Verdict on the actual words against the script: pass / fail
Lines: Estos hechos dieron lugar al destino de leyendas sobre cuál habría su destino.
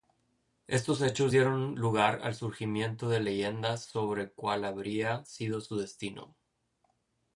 fail